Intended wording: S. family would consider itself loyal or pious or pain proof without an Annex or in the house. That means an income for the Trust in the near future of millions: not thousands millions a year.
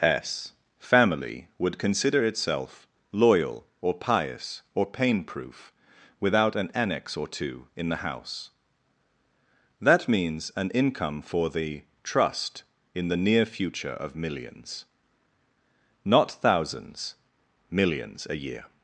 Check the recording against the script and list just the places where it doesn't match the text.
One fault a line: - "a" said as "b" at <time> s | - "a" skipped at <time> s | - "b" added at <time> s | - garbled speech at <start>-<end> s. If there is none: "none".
- "two" added at 7.3 s